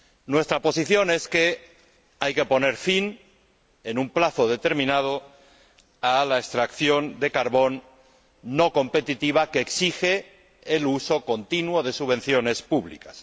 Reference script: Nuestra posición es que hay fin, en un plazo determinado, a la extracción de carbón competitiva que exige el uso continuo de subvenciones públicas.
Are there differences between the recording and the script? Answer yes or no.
yes